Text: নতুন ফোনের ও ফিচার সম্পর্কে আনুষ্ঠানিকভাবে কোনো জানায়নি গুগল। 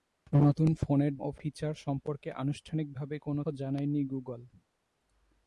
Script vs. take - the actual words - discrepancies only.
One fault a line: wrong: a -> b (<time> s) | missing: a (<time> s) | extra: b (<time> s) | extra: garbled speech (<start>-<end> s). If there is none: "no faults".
no faults